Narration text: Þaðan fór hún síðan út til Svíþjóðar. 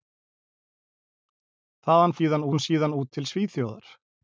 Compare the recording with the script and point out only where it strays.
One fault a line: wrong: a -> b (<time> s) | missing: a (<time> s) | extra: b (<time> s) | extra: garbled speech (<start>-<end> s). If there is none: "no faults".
wrong: fór -> síðan (2.2 s)